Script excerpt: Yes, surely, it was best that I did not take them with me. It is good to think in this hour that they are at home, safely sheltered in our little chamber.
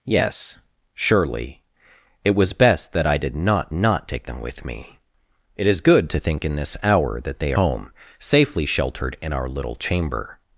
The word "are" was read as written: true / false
false